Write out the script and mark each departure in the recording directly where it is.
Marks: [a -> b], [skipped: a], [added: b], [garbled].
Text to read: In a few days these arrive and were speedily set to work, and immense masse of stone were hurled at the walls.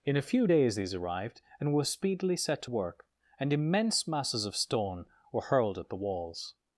In a few days these [arrive -> arrived] and were speedily set to work, and immense [masse -> masses] of stone were hurled at the walls.